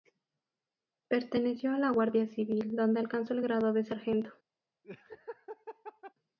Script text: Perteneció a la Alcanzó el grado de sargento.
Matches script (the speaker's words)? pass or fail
fail